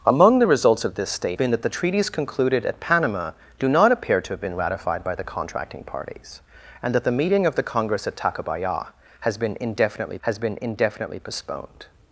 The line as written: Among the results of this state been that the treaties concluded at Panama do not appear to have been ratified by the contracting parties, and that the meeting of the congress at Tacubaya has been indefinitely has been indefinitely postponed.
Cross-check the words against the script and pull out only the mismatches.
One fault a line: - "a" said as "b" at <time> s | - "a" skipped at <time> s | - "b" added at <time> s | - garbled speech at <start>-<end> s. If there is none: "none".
none